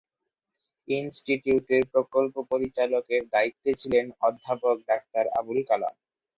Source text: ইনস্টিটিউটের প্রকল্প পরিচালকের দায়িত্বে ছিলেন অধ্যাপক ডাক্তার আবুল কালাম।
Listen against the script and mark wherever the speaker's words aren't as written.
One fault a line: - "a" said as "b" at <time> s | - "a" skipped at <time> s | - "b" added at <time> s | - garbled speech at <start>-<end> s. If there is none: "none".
none